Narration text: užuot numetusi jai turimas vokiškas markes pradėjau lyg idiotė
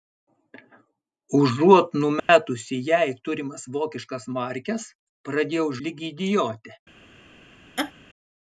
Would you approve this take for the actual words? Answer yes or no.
yes